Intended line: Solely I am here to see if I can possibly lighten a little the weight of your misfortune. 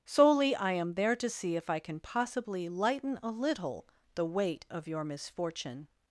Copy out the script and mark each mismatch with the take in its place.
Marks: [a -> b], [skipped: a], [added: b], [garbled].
Solely I am [here -> there] to see if I can possibly lighten a little the weight of your misfortune.